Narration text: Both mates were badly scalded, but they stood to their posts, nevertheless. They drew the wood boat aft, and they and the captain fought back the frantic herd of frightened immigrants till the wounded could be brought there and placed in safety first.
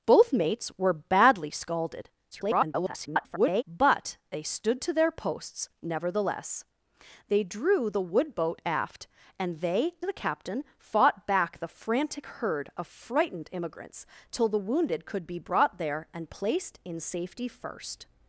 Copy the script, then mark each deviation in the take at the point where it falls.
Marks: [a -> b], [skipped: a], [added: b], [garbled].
Both mates were badly scalded, [garbled] but they stood to their posts, nevertheless. They drew the wood boat aft, and they [skipped: and] the captain fought back the frantic herd of frightened immigrants till the wounded could be brought there and placed in safety first.